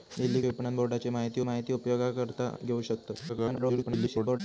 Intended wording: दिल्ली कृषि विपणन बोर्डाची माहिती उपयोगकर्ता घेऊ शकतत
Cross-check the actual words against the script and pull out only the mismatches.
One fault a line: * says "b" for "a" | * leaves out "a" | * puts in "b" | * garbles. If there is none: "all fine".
* leaves out "कृषि"
* puts in "माहिती"
* garbles